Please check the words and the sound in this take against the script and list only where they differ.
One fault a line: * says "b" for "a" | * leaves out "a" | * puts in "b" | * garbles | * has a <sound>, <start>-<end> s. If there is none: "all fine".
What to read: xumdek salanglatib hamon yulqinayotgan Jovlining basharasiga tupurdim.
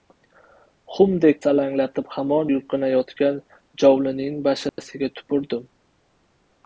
* has a dropout, 4.7-4.8 s